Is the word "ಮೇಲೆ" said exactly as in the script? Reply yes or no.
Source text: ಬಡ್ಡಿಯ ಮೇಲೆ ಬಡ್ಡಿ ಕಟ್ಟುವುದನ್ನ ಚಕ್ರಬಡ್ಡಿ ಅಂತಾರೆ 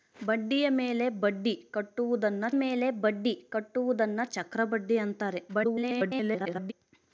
yes